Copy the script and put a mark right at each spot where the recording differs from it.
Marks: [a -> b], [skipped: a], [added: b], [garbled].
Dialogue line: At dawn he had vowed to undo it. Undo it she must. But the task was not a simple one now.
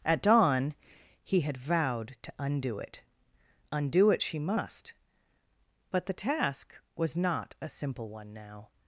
At dawn he had vowed to undo it. Undo it she must. But the task was not a simple one now.